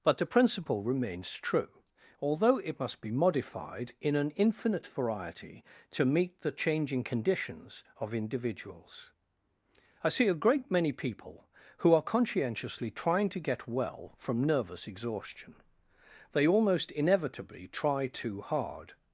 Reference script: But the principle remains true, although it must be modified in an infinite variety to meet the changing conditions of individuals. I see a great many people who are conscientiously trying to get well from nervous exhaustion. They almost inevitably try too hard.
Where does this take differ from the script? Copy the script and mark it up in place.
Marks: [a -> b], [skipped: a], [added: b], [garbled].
But the principle remains true, although it must be modified in an infinite variety to meet the changing conditions of individuals. I see a great many people who are conscientiously trying to get well from nervous exhaustion. They almost inevitably try too hard.